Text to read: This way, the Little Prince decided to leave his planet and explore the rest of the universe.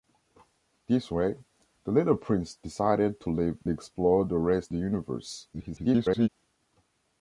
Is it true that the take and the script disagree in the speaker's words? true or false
true